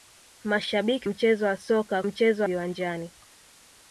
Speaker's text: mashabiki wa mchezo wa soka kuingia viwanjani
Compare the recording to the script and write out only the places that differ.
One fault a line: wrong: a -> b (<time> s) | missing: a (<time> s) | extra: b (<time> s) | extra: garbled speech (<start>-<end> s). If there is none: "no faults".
missing: wa (1.1 s)
wrong: kuingia -> mchezo (2.0 s)